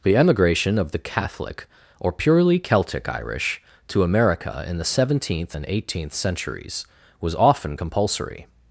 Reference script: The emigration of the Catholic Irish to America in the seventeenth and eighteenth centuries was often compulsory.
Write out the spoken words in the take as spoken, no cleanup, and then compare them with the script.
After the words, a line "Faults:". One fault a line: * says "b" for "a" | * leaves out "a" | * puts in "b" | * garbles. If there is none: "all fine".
The emigration of the Catholic or purely Celtic Irish to America in the seventeenth and eighteenth centuries was often compulsory.
Faults:
* puts in "or purely Celtic"